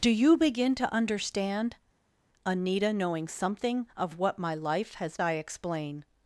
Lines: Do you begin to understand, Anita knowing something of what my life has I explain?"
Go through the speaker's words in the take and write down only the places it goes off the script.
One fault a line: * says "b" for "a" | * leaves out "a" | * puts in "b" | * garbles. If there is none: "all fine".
all fine